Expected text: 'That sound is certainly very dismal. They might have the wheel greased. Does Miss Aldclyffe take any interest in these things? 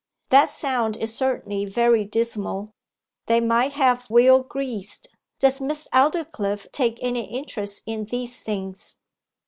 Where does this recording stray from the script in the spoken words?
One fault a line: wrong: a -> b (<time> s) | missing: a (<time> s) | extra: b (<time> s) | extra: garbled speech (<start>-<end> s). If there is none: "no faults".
missing: the (4.1 s)